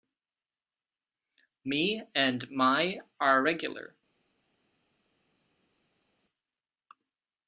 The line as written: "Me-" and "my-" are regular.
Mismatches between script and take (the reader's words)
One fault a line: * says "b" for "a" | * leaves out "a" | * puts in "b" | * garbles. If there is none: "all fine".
all fine